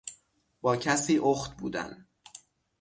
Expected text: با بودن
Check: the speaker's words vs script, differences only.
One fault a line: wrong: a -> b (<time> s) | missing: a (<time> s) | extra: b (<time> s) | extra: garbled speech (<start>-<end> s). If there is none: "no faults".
extra: کسی اخت (0.8 s)